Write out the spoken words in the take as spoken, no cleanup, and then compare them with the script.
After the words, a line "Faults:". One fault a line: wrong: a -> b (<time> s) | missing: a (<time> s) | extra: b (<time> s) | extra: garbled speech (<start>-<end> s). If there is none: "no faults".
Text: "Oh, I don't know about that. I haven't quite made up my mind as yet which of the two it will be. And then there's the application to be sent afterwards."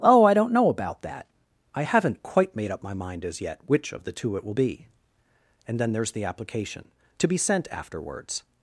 "Oh, I don't know about that. I haven't quite made up my mind as yet which of the two it will be. And then there's the application to be sent afterwards."
Faults:
no faults